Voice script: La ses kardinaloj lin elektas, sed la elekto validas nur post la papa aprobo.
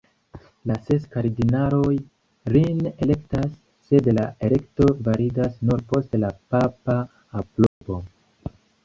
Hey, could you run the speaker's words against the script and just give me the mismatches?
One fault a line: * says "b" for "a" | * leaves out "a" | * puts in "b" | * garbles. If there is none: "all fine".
all fine